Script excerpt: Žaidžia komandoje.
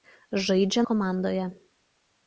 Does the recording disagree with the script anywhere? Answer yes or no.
no